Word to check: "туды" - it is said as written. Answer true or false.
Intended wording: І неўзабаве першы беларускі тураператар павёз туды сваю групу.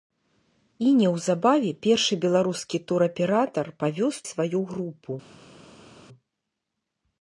false